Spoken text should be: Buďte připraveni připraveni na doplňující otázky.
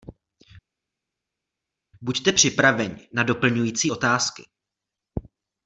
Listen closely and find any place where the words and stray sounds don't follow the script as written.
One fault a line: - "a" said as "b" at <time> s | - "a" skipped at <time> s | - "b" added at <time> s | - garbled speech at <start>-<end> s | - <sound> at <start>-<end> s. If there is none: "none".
- "připraveni" skipped at 3.1 s